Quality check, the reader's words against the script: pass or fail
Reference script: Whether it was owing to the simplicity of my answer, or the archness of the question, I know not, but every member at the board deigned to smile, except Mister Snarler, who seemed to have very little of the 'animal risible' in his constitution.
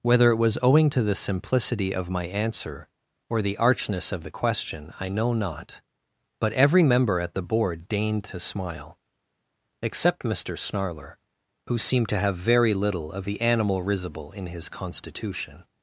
pass